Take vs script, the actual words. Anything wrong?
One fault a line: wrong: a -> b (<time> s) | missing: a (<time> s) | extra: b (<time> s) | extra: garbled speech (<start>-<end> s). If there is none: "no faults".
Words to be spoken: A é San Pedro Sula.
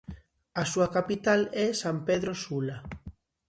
extra: súa capital (0.7 s)